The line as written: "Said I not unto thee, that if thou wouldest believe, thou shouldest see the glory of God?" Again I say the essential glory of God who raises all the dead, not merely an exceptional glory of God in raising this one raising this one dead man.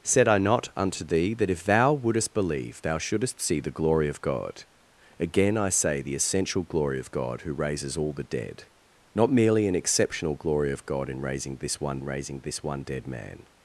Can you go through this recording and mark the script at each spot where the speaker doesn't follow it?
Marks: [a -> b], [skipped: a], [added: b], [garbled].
"Said I not unto thee, that if thou wouldest believe, thou shouldest see the glory of God?" Again I say the essential glory of God who raises all the dead, not merely an exceptional glory of God in raising this one raising this one dead man.